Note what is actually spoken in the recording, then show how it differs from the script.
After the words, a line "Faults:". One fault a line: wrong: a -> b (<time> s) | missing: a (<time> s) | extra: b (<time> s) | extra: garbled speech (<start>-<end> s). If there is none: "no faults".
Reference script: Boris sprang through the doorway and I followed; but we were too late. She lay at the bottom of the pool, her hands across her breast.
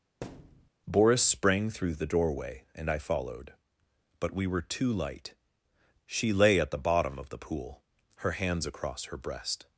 Boris sprang through the doorway and I followed; but we were too light. She lay at the bottom of the pool, her hands across her breast.
Faults:
wrong: late -> light (4.9 s)